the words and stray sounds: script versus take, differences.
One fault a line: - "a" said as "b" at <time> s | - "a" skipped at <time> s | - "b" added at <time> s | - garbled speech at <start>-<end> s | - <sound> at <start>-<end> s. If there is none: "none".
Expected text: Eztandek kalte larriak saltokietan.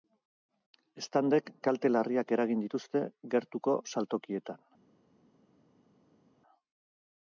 - "eragin dituzte gertuko" added at 2.4 s